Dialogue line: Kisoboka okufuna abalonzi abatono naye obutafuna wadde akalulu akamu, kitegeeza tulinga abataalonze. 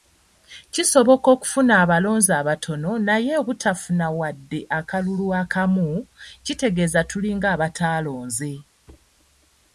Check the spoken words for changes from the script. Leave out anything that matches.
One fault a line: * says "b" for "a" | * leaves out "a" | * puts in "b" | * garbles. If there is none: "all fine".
all fine